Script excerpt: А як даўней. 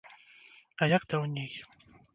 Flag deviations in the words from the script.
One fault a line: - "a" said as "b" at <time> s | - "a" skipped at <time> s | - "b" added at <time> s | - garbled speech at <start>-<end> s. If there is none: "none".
none